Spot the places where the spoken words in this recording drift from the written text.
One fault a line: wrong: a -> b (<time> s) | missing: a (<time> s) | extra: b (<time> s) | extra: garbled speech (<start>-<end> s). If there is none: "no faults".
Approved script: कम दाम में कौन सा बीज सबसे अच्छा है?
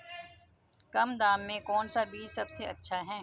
no faults